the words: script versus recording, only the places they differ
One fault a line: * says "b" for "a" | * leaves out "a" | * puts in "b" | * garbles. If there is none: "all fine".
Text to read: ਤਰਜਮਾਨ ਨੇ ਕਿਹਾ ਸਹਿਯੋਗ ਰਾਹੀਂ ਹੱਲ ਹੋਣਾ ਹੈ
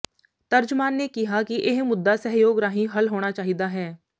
* puts in "ਕਿ ਇਹ ਮੁੱਦਾ"
* puts in "ਚਾਹੀਦਾ"